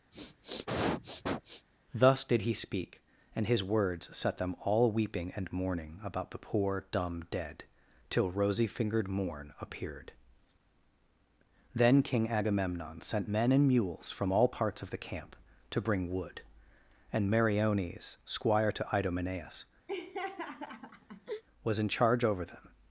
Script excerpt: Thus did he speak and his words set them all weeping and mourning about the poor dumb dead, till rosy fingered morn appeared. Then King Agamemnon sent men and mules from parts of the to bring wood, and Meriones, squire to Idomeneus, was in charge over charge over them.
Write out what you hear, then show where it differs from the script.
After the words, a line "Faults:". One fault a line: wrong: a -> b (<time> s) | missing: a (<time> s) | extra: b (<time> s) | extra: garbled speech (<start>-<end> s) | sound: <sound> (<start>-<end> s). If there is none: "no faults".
Thus did he speak and his words set them all weeping and mourning about the poor dumb dead, till rosy fingered morn appeared. Then King Agamemnon sent men and mules from all parts of the camp, to bring wood, and Meriones, squire to Idomeneus, was in charge over them.
Faults:
sound: sniff (0.1-1.7 s)
extra: all (14.3 s)
extra: camp (15.0 s)
sound: laugh (19.9-21.4 s)
missing: charge over (22.4 s)